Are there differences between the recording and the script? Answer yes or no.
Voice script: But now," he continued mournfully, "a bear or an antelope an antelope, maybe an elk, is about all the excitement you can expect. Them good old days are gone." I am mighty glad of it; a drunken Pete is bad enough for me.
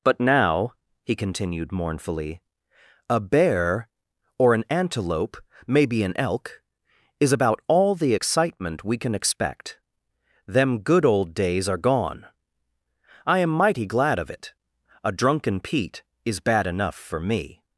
yes